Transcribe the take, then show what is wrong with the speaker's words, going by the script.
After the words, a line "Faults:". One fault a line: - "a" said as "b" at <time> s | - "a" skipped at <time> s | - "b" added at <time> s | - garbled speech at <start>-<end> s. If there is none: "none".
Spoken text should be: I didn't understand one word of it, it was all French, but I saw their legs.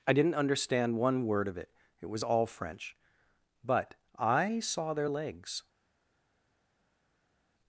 I didn't understand one word of it, it was all French, but I saw their legs.
Faults:
none